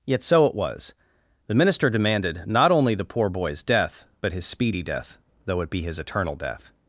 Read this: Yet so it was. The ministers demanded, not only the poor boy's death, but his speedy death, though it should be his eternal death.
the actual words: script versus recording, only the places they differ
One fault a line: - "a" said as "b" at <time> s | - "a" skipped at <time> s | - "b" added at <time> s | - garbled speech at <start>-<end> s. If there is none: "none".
- "ministers" said as "minister" at 1.5 s
- "should" skipped at 5.7 s